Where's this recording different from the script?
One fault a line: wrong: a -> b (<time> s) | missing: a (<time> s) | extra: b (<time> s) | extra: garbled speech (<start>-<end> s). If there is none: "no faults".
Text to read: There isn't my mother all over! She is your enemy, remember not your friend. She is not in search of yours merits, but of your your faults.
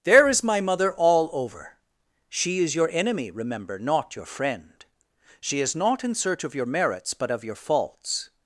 wrong: isn't -> is (0.3 s)
wrong: yours -> your (6.5 s)
missing: your (7.5 s)